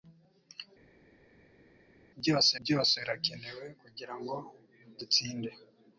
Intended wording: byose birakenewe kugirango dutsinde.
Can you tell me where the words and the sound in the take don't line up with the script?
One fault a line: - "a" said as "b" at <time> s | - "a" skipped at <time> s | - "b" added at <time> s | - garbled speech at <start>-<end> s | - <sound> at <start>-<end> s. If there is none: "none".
- "byose" added at 2.6 s